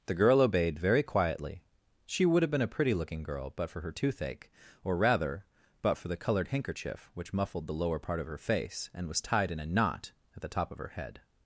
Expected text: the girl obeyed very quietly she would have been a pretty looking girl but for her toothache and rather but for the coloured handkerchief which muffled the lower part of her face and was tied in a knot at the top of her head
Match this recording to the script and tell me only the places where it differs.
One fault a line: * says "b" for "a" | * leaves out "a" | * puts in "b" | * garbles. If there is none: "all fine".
* says "or" for "and"